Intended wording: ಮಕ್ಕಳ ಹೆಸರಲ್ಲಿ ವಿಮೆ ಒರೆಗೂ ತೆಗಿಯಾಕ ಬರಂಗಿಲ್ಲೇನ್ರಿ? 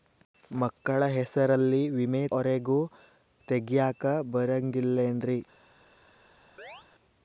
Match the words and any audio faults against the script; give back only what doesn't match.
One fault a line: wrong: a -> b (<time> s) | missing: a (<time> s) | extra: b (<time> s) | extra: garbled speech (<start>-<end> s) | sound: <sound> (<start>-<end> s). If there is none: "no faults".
sound: chirp (6.6-6.9 s)